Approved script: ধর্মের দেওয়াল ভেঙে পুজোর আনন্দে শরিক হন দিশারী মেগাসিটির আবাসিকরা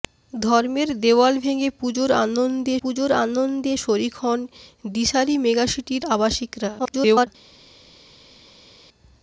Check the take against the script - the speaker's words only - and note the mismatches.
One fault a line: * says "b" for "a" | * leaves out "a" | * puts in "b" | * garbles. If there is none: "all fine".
* puts in "পুজোর আনন্দে"
* garbles